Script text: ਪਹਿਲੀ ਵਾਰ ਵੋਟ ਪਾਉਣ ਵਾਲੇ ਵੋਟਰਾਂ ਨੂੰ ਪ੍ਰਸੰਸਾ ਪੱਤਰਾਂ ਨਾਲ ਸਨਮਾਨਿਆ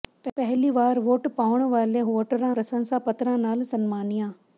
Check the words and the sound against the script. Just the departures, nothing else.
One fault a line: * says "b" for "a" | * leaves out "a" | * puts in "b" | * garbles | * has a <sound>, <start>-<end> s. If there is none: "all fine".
* leaves out "ਨੂੰ"